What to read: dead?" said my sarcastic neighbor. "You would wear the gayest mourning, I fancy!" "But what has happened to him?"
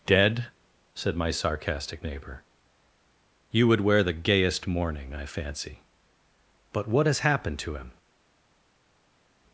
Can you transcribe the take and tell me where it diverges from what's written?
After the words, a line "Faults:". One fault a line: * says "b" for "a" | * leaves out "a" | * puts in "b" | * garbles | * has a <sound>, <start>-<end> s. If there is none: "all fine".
dead?" said my sarcastic neighbor. "You would wear the gayest mourning, I fancy!" "But what has happened to him?"
Faults:
all fine